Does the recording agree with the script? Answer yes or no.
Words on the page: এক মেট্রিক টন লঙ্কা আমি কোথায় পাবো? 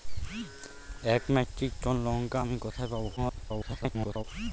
no